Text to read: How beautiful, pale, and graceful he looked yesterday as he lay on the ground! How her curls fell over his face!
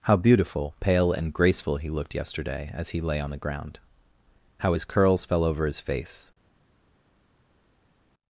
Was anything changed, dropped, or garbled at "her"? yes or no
yes